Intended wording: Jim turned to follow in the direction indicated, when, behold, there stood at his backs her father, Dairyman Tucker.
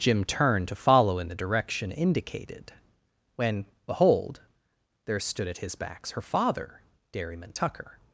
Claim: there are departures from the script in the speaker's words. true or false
false